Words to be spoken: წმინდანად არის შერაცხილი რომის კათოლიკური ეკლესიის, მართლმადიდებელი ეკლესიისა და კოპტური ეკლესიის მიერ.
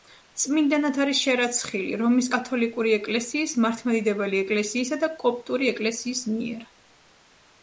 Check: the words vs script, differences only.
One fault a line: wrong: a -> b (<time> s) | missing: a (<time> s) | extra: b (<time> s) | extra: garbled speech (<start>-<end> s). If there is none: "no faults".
no faults